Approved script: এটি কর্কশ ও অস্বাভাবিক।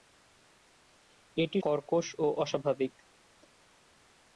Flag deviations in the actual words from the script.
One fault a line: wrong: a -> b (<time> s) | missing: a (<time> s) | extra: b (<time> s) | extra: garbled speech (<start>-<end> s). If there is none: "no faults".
no faults